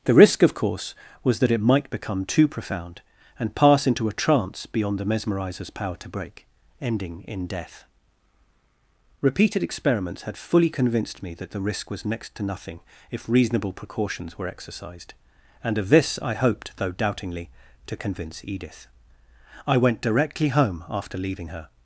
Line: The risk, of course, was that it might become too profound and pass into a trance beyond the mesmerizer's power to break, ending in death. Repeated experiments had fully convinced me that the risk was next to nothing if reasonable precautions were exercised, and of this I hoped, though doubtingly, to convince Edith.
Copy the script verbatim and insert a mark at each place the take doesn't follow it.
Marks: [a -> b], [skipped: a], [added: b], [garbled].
The risk, of course, was that it might become too profound and pass into a trance beyond the mesmerizer's power to break, ending in death. Repeated experiments had fully convinced me that the risk was next to nothing if reasonable precautions were exercised, and of this I hoped, though doubtingly, to convince Edith. [added: I went directly home after leaving her]